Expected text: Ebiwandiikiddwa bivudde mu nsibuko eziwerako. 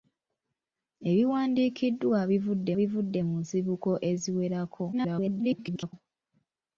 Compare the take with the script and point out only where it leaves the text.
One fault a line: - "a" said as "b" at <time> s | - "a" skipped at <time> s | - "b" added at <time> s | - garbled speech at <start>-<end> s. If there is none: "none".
- "bivudde" added at 2.8 s
- garbled speech at 4.9-5.9 s